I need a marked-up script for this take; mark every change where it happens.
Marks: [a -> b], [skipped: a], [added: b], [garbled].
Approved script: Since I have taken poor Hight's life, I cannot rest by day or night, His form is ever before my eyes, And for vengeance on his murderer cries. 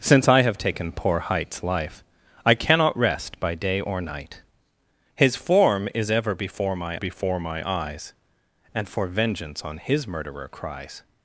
Since I have taken poor Hight's life, I cannot rest by day or night, His form is ever before my [added: before my] eyes, And for vengeance on his murderer cries.